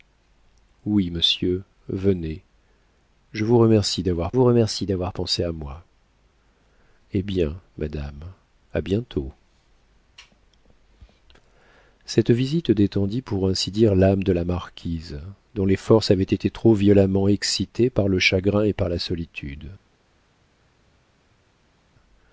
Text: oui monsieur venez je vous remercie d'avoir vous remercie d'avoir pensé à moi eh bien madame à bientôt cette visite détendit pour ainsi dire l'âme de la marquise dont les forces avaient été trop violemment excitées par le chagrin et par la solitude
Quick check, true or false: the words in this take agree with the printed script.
true